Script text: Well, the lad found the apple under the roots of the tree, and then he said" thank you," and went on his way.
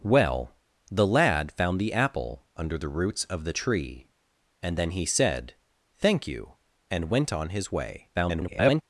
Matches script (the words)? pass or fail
fail